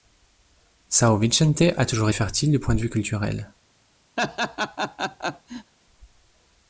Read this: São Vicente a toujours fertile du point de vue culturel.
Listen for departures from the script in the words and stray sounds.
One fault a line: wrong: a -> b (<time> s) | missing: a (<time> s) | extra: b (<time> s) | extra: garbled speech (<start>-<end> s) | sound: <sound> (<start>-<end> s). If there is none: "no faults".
sound: laugh (4.2-5.7 s)